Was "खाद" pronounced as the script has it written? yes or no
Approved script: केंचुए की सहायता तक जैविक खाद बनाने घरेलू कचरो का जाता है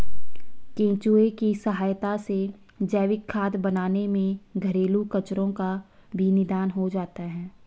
yes